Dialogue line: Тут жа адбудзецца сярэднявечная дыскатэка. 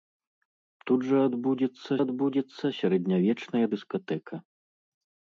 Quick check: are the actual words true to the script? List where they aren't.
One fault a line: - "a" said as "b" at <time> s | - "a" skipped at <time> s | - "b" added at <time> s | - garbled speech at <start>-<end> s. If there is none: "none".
- "адбудзецца" added at 2.0 s